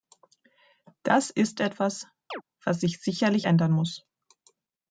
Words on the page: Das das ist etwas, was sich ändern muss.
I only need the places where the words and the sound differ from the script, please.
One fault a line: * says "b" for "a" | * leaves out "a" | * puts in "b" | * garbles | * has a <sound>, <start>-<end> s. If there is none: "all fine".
* leaves out "das"
* has a chirp, 2.3-2.4 s
* puts in "sicherlich"